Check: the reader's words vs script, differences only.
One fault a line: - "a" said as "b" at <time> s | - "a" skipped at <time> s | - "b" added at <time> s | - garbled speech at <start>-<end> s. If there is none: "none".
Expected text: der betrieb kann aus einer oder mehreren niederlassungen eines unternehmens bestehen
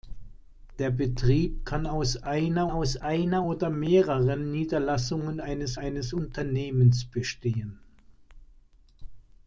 - "aus einer" added at 2.7 s
- "eines" added at 5.7 s